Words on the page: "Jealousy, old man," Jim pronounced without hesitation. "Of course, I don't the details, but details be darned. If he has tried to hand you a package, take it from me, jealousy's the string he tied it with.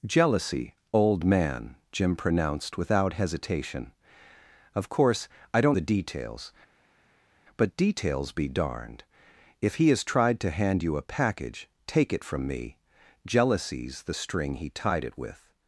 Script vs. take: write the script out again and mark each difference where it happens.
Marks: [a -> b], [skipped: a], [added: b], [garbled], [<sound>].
"Jealousy, old man," Jim pronounced without hesitation. "Of course, I don't the details, but details be darned. If he has tried to hand you a package, take it from me, jealousy's the string he tied it with.